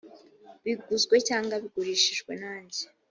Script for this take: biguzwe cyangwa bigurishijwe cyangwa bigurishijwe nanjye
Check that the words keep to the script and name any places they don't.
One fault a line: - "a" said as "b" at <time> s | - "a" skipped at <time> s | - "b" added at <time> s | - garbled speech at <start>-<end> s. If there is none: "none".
- "cyangwa bigurishijwe" skipped at 2.3 s